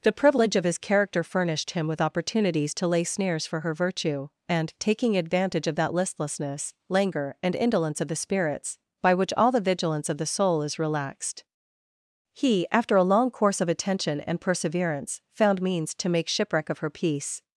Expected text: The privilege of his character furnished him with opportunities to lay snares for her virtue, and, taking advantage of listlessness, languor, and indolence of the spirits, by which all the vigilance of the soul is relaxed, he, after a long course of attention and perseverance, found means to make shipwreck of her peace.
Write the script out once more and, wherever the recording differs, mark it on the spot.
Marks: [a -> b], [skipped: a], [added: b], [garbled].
The privilege of his character furnished him with opportunities to lay snares for her virtue, and, taking advantage of [added: that] listlessness, languor, and indolence of the spirits, by which all the vigilance of the soul is relaxed, he, after a long course of attention and perseverance, found means to make shipwreck of her peace.